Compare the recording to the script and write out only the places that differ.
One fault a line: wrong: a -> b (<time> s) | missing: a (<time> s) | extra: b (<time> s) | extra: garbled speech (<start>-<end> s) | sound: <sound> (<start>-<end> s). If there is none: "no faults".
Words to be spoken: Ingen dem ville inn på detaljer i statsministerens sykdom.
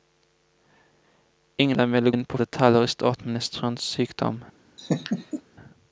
sound: laugh (4.8-5.4 s)